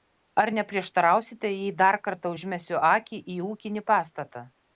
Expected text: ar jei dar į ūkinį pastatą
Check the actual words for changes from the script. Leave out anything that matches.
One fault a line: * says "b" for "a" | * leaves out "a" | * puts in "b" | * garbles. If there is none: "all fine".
* puts in "neprieštarausite"
* puts in "kartą užmesiu akį"